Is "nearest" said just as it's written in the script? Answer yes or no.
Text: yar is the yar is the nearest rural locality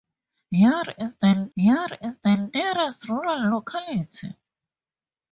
yes